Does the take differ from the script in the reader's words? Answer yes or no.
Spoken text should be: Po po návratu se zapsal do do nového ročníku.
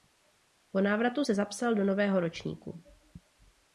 yes